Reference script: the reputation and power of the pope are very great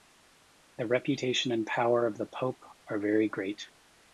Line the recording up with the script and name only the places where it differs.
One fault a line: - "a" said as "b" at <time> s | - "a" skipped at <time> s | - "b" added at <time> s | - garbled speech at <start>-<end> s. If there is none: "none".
none